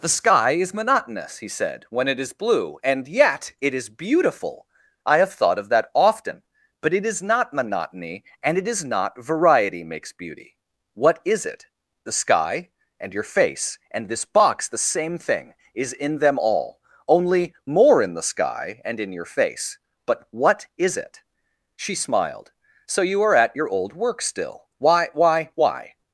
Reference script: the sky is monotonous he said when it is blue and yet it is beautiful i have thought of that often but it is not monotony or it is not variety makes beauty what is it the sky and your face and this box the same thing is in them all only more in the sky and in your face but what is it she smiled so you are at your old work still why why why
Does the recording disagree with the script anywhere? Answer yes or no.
yes